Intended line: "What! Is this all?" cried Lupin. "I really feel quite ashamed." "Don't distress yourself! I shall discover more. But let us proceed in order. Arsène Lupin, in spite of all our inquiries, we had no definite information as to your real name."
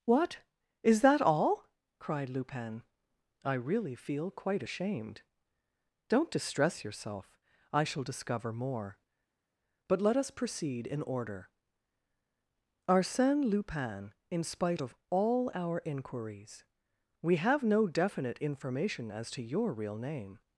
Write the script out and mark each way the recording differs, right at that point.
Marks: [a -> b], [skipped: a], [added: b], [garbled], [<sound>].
"What! Is [this -> that] all?" cried Lupin. "I really feel quite ashamed." "Don't distress yourself! I shall discover more. But let us proceed in order. Arsène Lupin, in spite of all our inquiries, we [had -> have] no definite information as to your real name."